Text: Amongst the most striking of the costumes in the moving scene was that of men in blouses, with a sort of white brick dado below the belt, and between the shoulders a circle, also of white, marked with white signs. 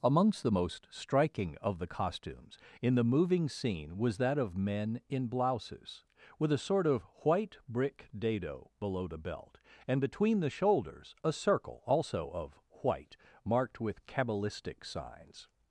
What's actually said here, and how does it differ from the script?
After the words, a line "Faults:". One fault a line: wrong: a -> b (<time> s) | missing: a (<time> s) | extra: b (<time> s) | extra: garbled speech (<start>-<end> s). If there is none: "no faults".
Amongst the most striking of the costumes in the moving scene was that of men in blouses, with a sort of white brick dado below the belt, and between the shoulders a circle, also of white, marked with cabalistic signs.
Faults:
wrong: white -> cabalistic (14.1 s)